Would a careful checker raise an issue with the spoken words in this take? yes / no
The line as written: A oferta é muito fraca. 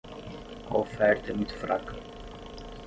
no